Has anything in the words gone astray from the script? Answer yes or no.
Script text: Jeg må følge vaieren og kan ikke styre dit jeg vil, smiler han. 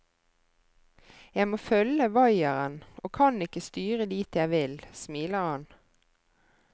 no